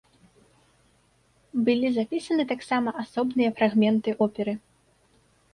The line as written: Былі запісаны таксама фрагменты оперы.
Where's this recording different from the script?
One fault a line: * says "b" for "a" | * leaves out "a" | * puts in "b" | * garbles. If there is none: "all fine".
* puts in "асобныя"